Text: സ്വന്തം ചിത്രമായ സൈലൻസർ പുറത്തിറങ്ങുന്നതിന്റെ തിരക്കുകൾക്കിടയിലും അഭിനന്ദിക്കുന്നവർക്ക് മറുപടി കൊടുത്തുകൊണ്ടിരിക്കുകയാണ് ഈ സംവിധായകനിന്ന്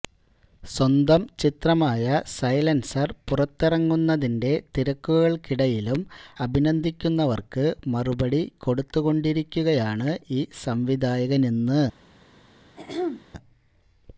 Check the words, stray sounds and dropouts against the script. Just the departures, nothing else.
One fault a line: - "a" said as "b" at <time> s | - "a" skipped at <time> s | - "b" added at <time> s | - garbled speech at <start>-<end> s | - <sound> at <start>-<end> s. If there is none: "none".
- throat clearing at 12.8-13.2 s